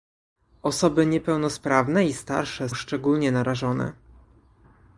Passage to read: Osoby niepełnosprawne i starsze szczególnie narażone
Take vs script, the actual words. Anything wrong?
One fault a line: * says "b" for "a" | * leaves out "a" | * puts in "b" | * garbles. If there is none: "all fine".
all fine